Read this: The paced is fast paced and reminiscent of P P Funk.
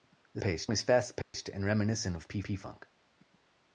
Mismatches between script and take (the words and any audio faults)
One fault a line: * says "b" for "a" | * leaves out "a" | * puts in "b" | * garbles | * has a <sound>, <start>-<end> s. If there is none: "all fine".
* has a dropout, 1.2-1.3 s